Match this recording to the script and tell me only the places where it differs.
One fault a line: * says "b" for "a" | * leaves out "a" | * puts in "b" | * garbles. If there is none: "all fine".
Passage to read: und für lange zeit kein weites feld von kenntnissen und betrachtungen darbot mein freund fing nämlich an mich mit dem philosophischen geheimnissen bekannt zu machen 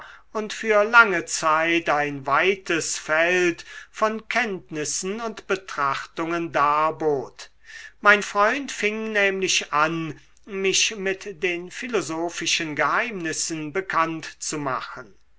* says "ein" for "kein"
* says "den" for "dem"